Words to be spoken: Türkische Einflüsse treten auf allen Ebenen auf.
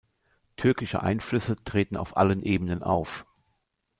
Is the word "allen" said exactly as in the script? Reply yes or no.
yes